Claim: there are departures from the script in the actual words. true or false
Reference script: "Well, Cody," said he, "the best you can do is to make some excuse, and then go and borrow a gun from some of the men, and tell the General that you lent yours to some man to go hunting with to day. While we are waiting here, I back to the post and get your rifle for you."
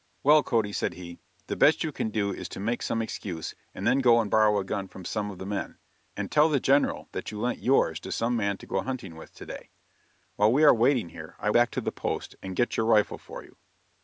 false